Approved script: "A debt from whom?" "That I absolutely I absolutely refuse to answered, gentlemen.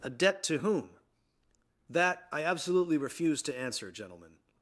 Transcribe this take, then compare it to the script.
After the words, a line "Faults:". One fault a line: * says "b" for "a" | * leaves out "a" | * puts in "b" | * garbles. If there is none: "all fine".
"A debt to whom?" "That I absolutely refuse to answer, gentlemen.
Faults:
* says "to" for "from"
* leaves out "I absolutely"
* says "answer" for "answered"